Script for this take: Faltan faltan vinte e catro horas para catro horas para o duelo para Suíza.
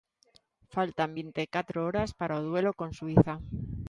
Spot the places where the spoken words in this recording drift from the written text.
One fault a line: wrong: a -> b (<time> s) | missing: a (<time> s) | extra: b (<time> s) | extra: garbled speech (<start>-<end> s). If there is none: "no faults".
missing: faltan (1.1 s)
missing: catro horas para (2.4 s)
wrong: para -> con (2.8 s)